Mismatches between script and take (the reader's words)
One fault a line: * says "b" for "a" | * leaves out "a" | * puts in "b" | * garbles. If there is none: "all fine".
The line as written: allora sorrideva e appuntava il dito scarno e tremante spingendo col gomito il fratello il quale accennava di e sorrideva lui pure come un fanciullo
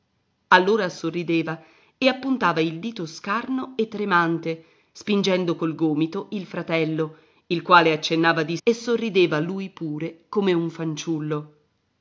all fine